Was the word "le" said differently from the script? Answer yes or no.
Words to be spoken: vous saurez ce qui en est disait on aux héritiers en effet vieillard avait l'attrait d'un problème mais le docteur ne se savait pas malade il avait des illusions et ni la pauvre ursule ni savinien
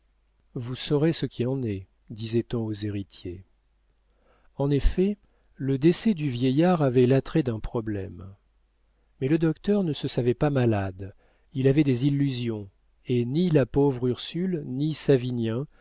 no